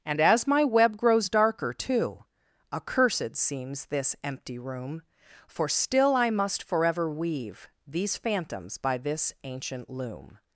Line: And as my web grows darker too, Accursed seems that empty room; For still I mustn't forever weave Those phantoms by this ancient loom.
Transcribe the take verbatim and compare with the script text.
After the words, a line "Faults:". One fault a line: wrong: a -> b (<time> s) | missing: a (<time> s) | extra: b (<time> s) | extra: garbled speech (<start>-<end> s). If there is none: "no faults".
And as my web grows darker too, Accursed seems this empty room; For still I must forever weave These phantoms by this ancient loom.
Faults:
wrong: that -> this (3.9 s)
wrong: mustn't -> must (6.3 s)
wrong: Those -> These (7.8 s)